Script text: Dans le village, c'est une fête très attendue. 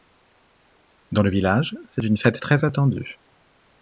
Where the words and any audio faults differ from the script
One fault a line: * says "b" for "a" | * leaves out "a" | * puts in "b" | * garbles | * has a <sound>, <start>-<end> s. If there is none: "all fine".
all fine